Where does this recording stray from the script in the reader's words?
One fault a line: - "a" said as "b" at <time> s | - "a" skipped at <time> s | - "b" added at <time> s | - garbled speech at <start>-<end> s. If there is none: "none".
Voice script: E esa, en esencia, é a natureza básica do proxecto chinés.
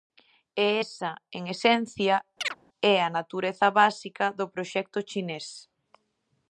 none